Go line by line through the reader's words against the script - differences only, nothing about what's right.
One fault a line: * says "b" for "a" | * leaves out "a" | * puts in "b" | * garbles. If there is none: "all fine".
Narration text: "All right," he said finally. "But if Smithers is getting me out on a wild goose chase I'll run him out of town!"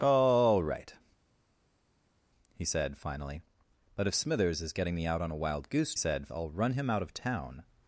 * says "said" for "chase"